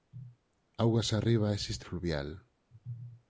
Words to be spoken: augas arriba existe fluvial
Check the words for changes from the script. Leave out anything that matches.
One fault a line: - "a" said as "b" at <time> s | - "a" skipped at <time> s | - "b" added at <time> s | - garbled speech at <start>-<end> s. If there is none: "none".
none